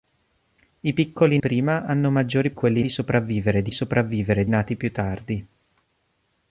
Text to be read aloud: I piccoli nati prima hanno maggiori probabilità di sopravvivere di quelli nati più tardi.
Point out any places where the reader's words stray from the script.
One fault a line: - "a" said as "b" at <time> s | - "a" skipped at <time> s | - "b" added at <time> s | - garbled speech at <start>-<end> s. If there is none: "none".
- "nati" skipped at 1.4 s
- "probabilità" said as "quelli" at 2.5 s
- "quelli" said as "sopravvivere" at 3.7 s